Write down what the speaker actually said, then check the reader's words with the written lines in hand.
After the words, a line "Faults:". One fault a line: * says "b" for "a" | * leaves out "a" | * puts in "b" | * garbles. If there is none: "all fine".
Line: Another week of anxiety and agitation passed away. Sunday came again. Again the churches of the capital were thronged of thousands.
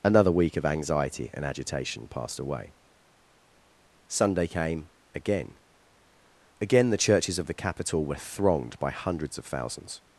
Another week of anxiety and agitation passed away. Sunday came again. Again the churches of the capital were thronged by hundreds of thousands.
Faults:
* puts in "by hundreds"